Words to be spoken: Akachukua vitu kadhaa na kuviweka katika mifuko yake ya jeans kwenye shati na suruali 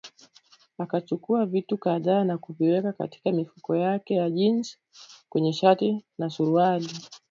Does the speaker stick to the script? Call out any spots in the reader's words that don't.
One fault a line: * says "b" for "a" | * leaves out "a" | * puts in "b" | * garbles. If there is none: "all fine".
all fine